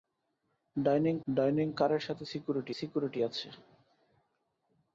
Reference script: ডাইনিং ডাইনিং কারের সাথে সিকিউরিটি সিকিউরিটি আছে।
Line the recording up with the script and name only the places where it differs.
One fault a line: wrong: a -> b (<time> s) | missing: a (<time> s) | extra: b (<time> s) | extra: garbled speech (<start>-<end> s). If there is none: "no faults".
no faults